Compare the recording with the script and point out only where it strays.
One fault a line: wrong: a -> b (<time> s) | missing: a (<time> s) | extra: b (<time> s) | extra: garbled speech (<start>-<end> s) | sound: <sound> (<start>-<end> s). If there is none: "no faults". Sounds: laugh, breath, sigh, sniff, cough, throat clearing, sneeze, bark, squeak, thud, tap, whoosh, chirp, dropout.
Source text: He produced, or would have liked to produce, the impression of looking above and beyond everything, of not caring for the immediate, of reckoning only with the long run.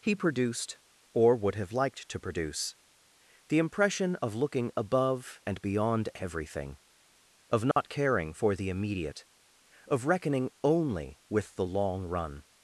sound: dropout (7.7-7.8 s)